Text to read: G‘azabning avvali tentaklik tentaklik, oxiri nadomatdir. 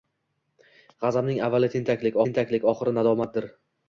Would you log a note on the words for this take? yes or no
no